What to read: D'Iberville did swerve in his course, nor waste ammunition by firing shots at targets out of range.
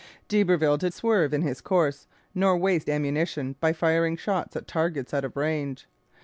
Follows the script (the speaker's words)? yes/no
yes